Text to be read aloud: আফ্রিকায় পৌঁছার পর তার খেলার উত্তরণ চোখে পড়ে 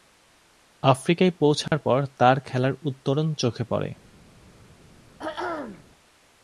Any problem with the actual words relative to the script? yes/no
no